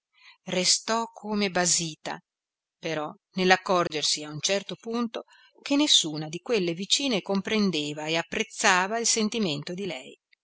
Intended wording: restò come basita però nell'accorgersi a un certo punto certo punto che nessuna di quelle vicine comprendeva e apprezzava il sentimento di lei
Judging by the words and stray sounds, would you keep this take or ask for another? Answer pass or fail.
fail